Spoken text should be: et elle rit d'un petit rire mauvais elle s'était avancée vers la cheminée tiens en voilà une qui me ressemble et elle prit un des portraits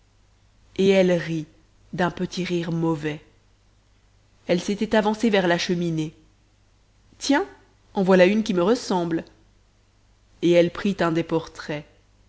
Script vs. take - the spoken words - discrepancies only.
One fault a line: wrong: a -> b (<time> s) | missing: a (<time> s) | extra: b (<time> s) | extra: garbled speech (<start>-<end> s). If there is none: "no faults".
no faults